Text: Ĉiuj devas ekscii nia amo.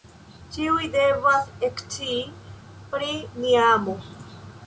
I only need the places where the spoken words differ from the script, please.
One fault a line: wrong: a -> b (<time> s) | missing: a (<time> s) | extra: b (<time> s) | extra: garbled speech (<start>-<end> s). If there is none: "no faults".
extra: pri (3.0 s)